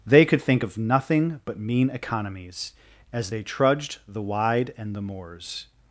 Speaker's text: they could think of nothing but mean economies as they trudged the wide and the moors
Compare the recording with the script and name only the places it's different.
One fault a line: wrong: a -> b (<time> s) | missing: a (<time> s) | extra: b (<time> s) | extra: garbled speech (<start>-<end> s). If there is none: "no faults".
no faults